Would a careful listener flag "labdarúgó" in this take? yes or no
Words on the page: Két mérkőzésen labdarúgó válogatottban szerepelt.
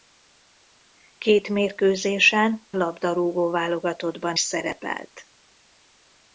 no